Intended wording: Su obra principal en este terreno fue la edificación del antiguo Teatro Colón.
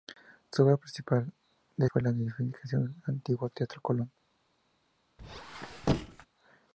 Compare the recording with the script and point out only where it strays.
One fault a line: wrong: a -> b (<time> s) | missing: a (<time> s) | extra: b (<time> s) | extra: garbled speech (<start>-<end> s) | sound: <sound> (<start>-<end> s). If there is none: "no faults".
missing: este terreno (1.9 s)
sound: squeak (5.2-6.3 s)